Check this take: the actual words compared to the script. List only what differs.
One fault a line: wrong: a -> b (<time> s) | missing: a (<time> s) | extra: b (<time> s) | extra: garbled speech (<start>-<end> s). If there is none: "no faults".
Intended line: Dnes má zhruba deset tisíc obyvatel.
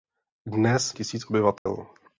missing: má zhruba deset (0.9 s)